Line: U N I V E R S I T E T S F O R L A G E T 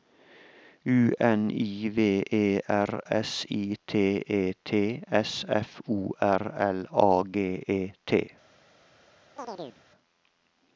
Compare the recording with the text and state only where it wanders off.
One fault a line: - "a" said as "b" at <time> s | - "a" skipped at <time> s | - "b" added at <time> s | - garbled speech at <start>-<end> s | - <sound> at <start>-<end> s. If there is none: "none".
- chirp at 9.4-9.8 s